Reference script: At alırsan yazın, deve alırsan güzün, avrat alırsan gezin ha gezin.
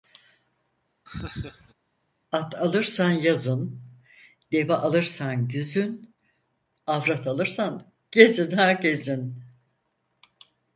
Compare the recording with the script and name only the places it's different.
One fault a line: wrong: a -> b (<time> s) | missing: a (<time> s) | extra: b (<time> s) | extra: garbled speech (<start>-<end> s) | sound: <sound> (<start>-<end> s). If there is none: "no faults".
sound: laugh (1.1-1.7 s)